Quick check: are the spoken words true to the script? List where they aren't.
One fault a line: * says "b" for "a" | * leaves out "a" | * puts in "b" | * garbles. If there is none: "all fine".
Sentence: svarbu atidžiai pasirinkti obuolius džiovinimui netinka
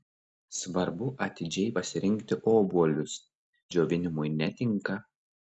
all fine